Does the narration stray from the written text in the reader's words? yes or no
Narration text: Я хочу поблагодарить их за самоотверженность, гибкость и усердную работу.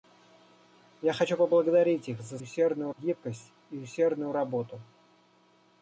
yes